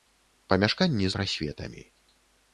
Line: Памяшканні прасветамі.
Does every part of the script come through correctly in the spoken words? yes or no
yes